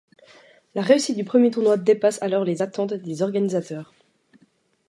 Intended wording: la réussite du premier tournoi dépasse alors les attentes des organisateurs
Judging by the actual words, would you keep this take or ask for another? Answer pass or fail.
pass